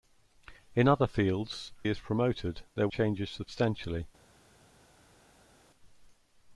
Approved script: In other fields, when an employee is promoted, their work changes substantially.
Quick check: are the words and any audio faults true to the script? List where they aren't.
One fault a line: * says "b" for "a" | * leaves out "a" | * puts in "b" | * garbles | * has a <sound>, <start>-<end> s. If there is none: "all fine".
* leaves out "when an employee"
* leaves out "work"